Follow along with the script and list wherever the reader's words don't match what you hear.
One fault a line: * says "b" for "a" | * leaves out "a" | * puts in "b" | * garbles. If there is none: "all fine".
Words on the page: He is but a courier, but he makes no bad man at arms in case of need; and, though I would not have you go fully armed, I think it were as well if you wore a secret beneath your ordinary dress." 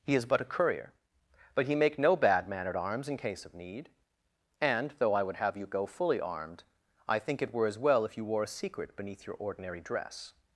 * says "make" for "makes"
* leaves out "not"